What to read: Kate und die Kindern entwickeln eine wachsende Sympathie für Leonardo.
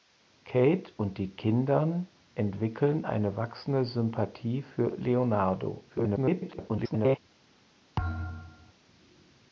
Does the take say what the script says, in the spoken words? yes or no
no